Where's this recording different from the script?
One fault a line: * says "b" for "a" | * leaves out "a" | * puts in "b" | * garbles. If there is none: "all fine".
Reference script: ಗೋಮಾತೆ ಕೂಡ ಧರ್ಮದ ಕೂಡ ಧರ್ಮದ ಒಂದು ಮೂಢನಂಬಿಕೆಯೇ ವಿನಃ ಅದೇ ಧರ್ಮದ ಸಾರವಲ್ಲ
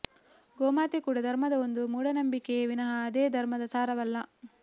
* leaves out "ಕೂಡ ಧರ್ಮದ"